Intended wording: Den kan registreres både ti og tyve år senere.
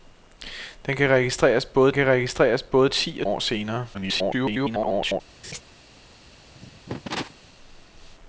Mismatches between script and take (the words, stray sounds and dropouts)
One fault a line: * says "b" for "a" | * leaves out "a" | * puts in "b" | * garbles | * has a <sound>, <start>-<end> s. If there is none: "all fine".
* puts in "kan registreres både"
* leaves out "tyve"
* garbles
* has a laugh, 5.4-5.6 s
* has a cough, 6.5-7.3 s